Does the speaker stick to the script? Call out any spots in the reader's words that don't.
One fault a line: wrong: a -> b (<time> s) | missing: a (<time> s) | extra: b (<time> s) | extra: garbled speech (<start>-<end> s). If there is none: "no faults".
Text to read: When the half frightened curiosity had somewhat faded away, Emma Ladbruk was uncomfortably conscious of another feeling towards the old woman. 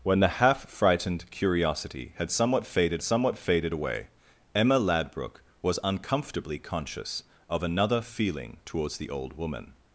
extra: somewhat faded (3.0 s)